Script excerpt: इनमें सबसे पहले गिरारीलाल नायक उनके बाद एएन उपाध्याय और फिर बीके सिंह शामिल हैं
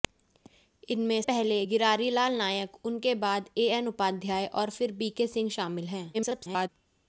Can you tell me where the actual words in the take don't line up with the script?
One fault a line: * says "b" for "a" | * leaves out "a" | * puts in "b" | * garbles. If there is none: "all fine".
* leaves out "सबसे"
* garbles